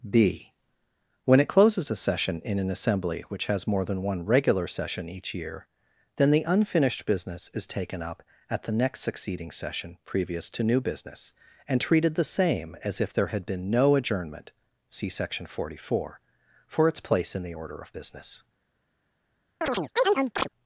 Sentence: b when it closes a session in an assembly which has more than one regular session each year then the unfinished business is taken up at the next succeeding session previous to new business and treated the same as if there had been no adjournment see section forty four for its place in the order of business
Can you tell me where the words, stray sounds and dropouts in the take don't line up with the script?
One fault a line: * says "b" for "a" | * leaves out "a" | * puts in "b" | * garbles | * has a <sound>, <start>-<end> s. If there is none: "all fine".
* has a chirp, 19.6-20.5 s